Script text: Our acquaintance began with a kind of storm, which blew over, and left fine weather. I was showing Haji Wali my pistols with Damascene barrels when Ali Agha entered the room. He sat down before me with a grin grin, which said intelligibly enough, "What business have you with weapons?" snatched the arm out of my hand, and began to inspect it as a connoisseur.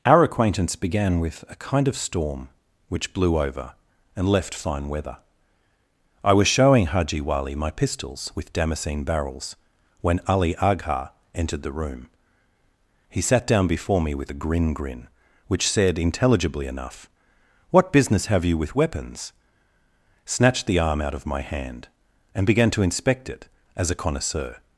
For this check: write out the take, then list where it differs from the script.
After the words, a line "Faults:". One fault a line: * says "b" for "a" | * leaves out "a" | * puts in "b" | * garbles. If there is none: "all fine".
Our acquaintance began with a kind of storm, which blew over, and left fine weather. I was showing Haji Wali my pistols with Damascene barrels when Ali Agha entered the room. He sat down before me with a grin grin, which said intelligibly enough, "What business have you with weapons?" snatched the arm out of my hand, and began to inspect it as a connoisseur.
Faults:
all fine